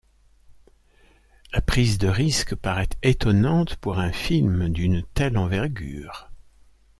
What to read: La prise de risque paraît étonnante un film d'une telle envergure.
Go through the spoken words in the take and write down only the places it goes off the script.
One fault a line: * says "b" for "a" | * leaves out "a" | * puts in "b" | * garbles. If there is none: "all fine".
* puts in "pour"